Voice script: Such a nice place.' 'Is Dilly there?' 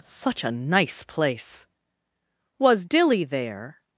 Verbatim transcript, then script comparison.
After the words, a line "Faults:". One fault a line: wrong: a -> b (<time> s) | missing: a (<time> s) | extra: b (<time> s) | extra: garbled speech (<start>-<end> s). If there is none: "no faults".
Such a nice place.' 'Was Dilly there?'
Faults:
wrong: Is -> Was (2.6 s)